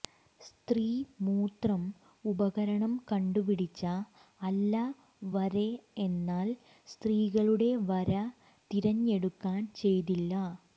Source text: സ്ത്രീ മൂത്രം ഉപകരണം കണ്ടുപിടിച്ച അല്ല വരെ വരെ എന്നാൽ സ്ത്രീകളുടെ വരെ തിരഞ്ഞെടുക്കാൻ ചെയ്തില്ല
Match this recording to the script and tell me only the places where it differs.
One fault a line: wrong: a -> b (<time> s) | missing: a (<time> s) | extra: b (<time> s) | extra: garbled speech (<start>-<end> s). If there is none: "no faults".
missing: വരെ (5.7 s)